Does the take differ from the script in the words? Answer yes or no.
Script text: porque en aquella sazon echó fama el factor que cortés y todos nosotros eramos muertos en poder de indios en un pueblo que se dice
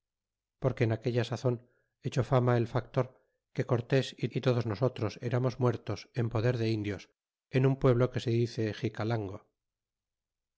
yes